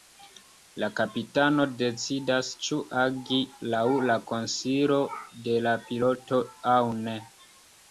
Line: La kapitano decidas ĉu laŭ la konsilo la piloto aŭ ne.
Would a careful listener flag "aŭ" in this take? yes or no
no